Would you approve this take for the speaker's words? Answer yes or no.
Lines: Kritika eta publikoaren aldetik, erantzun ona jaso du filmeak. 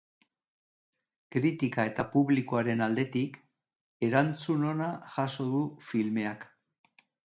yes